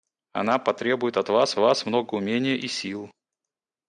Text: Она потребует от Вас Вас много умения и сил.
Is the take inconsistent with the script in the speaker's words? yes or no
no